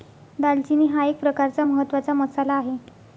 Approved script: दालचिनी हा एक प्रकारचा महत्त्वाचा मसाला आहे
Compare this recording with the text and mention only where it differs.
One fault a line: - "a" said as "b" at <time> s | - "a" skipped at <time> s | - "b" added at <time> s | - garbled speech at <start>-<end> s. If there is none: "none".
none